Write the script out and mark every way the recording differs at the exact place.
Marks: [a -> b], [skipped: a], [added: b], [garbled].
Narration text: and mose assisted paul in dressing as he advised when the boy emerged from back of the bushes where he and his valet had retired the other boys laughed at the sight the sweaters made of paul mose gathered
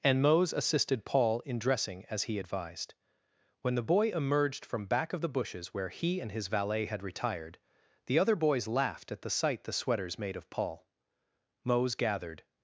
and mose assisted paul in dressing as he advised when the boy emerged from back of the bushes where he and his valet had retired the other boys laughed at the sight the sweaters made of paul mose gathered